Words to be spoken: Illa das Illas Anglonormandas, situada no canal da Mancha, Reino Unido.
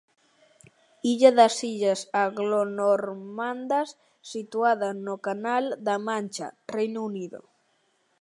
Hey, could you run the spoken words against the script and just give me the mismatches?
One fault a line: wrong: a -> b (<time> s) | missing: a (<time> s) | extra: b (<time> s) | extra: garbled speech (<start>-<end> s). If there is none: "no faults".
no faults